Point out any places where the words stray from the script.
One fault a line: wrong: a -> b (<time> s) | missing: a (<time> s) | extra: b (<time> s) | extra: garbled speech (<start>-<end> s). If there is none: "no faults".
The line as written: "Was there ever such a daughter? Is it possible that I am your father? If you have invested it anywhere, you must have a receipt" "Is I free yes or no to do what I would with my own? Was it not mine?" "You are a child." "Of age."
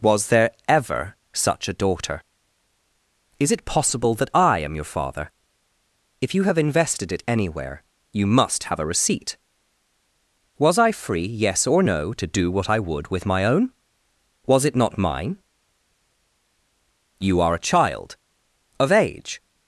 wrong: Is -> Was (10.6 s)